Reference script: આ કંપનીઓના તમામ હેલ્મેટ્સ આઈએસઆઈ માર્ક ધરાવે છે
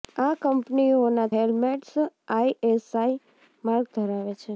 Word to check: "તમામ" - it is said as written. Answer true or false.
false